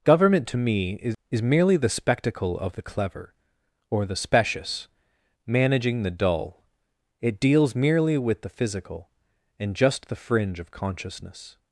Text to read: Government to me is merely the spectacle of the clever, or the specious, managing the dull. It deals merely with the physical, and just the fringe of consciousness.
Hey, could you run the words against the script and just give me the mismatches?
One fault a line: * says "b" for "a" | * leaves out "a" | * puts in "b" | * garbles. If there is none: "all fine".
* puts in "is"